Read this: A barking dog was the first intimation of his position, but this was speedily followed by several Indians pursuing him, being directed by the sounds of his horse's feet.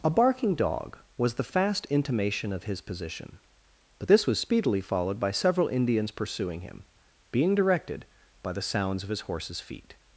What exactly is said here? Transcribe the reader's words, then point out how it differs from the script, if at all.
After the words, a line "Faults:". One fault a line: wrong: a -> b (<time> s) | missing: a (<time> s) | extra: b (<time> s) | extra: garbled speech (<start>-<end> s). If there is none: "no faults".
A barking dog was the fast intimation of his position, but this was speedily followed by several Indians pursuing him, being directed by the sounds of his horse's feet.
Faults:
wrong: first -> fast (1.4 s)